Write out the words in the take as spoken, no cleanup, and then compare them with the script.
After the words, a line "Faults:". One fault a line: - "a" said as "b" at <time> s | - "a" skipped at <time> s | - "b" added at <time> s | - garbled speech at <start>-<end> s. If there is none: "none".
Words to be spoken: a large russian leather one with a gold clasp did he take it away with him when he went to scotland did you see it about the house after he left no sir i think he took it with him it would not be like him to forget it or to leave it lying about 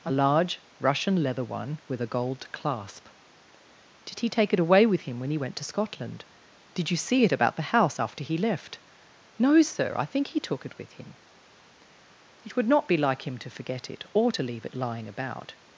a large russian leather one with a gold clasp did he take it away with him when he went to scotland did you see it about the house after he left no sir i think he took it with him it would not be like him to forget it or to leave it lying about
Faults:
none